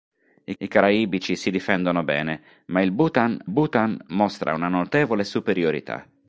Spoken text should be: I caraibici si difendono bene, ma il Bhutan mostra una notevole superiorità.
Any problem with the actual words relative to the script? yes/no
yes